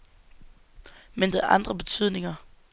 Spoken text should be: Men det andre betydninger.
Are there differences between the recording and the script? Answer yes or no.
no